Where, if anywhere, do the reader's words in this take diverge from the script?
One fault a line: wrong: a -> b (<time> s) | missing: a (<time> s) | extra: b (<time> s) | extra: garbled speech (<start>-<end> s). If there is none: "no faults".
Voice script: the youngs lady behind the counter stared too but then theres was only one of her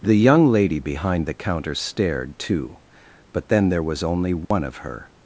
wrong: youngs -> young (0.1 s)
wrong: theres -> there (3.7 s)